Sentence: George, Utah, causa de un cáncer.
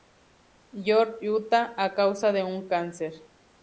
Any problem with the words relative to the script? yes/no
yes